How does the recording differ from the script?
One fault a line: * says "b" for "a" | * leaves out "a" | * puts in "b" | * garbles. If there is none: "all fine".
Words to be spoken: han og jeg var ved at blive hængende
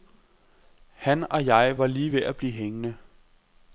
* puts in "lige"